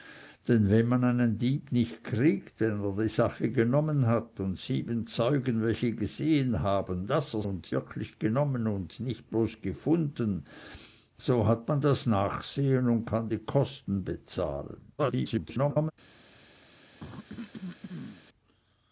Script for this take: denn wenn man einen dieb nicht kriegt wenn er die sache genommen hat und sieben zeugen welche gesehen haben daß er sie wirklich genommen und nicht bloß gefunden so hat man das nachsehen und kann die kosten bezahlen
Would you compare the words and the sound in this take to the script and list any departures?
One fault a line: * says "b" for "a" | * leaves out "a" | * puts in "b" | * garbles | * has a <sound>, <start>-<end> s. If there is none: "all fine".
* says "und" for "sie"
* garbles
* has a cough, 17.0-18.2 s